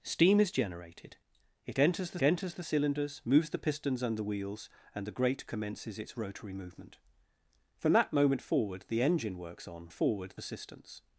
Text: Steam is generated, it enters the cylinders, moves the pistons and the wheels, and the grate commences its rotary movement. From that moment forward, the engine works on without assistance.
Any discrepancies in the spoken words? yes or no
yes